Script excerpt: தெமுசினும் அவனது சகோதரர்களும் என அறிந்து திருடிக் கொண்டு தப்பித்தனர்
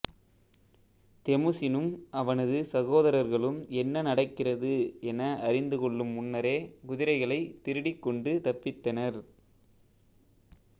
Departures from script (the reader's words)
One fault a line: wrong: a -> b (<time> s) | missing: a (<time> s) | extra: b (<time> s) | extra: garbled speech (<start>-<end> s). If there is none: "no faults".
extra: என்ன நடக்கிறது (3.8 s)
extra: கொள்ளும் முன்னரே குதிரைகளைத் (5.8 s)